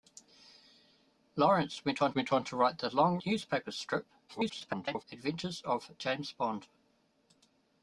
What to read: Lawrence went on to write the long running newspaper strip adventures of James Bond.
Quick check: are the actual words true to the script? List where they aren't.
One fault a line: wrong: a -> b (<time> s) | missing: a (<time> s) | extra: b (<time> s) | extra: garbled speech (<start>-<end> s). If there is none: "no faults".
extra: went on (2.1 s)
missing: running (3.2 s)
extra: garbled speech (4.3-5.0 s)